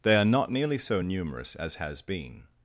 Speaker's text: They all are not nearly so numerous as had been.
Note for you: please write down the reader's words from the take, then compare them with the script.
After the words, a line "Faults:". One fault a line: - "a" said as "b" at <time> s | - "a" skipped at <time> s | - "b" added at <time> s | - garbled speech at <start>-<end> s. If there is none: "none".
They are not nearly so numerous as has been.
Faults:
- "all" skipped at 0.1 s
- "had" said as "has" at 1.8 s